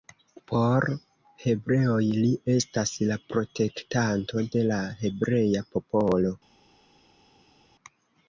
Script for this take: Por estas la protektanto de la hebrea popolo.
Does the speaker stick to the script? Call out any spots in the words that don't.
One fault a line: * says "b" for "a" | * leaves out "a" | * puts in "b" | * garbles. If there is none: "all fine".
* puts in "hebreoj li"